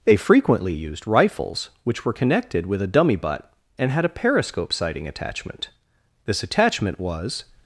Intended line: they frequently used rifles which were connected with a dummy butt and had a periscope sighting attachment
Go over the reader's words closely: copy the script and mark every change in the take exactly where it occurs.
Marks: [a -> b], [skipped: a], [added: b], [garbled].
they frequently used rifles which were connected with a dummy butt and had a periscope sighting attachment [added: this attachment was]